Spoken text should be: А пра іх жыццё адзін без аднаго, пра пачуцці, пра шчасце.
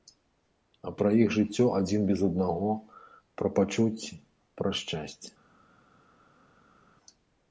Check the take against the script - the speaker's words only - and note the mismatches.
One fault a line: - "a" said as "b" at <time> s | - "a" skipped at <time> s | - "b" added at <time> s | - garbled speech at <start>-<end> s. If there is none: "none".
none